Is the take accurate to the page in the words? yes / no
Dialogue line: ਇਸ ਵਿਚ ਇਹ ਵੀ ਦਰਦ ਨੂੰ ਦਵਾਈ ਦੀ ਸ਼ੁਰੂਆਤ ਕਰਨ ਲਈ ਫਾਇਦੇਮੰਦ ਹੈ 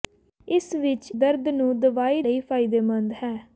no